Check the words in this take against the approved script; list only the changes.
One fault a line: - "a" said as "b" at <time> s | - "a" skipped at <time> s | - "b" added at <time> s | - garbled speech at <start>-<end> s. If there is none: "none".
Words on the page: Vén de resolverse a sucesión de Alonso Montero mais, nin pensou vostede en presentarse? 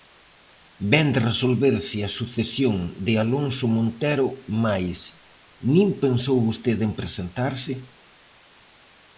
none